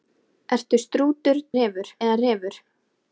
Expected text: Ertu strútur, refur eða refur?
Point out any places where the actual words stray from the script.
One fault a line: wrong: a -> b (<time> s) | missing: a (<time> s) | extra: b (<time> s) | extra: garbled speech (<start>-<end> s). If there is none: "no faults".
no faults